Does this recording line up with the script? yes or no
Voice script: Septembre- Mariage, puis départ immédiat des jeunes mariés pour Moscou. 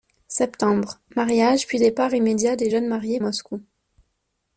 no